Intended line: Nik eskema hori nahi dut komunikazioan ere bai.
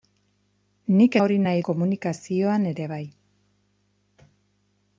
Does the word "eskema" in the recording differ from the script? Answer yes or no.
yes